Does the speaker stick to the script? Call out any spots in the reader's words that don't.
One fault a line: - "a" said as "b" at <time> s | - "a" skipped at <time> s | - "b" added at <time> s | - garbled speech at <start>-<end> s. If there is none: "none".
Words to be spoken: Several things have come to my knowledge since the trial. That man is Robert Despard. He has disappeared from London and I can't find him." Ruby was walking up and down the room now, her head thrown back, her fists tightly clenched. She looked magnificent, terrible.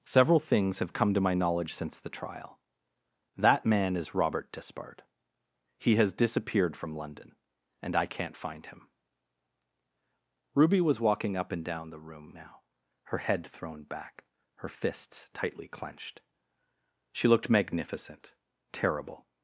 none